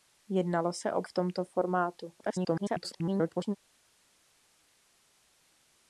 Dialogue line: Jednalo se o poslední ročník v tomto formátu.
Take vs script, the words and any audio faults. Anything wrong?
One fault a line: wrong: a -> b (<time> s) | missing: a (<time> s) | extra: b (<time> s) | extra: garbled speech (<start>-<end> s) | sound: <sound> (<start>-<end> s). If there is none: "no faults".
missing: poslední ročník (1.0 s)
extra: garbled speech (2.2-3.6 s)